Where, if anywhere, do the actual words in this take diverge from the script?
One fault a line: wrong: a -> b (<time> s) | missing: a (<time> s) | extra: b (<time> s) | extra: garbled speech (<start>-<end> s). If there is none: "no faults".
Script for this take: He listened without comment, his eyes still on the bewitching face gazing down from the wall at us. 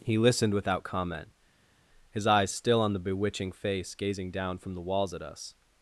wrong: wall -> walls (4.8 s)